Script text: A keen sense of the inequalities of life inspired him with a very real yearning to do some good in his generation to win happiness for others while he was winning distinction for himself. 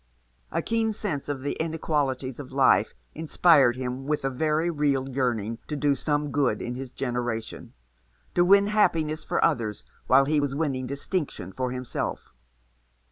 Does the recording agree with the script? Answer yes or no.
yes